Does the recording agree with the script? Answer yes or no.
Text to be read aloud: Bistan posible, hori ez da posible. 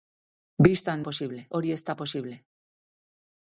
yes